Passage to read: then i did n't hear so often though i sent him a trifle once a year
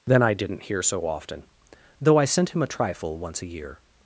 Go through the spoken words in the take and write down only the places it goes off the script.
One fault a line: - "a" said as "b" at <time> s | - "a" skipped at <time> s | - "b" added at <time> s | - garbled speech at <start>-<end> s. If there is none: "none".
none